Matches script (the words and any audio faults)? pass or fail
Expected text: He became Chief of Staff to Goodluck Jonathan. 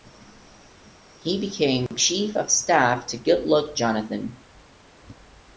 fail